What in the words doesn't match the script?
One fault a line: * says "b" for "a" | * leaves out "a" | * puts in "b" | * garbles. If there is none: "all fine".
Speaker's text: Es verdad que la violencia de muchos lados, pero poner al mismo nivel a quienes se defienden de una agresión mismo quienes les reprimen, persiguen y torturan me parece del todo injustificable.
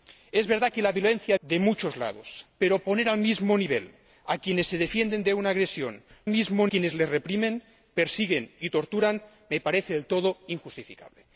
all fine